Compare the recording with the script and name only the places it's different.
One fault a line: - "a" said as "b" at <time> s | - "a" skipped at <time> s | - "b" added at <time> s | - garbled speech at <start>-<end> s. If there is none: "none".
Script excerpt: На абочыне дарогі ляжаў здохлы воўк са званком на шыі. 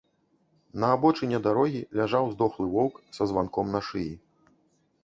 none